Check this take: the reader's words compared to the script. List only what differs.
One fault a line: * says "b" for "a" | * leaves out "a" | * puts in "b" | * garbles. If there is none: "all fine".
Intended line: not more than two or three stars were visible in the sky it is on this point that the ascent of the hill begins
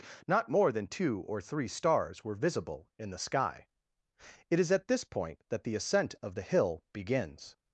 * says "at" for "on"